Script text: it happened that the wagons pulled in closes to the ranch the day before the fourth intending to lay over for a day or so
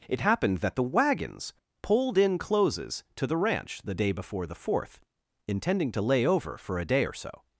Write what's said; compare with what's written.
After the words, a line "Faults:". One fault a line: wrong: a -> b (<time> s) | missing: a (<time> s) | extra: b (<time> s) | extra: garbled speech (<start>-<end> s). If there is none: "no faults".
it happened that the wagons pulled in closes to the ranch the day before the fourth intending to lay over for a day or so
Faults:
no faults